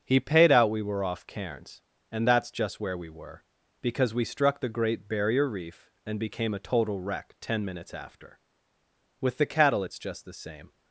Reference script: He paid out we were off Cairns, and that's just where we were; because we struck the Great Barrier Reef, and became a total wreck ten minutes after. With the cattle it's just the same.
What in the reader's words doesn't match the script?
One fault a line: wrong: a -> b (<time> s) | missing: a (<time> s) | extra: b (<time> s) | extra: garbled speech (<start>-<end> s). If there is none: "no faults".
no faults